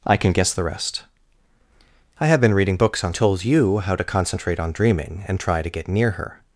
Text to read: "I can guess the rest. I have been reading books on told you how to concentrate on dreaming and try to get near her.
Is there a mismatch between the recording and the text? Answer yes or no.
no